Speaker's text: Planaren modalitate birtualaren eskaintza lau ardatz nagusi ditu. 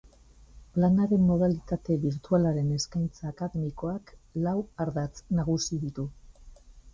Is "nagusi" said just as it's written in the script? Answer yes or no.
yes